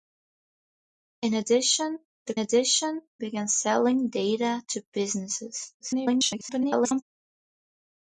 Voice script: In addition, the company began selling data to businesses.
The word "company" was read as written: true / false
false